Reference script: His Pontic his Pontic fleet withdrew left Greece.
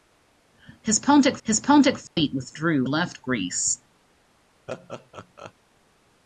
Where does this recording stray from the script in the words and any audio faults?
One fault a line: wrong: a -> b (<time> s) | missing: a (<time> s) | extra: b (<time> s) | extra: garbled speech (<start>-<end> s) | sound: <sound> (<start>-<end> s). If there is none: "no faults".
sound: dropout (2.1-2.2 s)
sound: laugh (4.7-5.5 s)